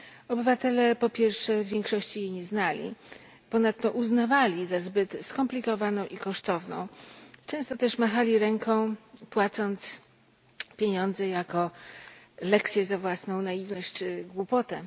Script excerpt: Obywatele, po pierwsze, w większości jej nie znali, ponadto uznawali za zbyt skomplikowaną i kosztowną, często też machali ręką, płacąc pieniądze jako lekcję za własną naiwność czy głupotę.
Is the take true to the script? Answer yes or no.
yes